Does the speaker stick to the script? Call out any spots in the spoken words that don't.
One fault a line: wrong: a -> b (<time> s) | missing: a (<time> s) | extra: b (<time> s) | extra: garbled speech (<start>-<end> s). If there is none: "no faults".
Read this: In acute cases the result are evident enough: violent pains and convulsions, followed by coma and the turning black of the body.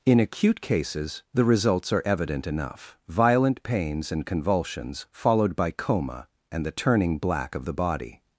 wrong: result -> results (1.4 s)